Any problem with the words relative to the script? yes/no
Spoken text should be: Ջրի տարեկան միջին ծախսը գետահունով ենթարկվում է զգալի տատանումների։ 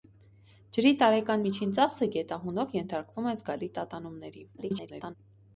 yes